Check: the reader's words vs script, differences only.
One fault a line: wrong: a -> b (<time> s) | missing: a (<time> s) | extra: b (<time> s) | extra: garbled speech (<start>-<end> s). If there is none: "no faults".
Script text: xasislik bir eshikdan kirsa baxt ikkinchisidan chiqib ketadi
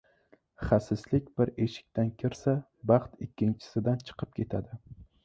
no faults